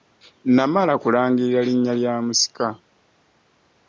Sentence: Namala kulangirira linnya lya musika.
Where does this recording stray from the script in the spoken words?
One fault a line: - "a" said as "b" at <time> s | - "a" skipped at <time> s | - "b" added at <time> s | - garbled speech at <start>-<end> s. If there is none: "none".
none